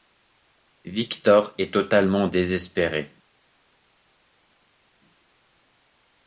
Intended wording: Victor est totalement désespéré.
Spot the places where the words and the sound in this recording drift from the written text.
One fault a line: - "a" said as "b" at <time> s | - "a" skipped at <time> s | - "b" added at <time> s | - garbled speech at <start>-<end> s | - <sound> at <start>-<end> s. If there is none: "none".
none